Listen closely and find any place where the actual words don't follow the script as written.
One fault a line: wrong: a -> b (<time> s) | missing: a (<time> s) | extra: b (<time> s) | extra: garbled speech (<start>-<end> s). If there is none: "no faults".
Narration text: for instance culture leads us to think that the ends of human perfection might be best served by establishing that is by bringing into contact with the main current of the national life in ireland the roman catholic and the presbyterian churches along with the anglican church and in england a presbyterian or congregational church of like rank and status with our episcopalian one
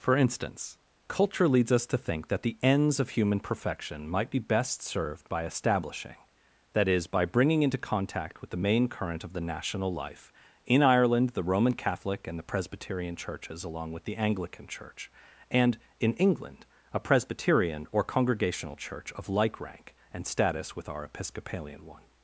no faults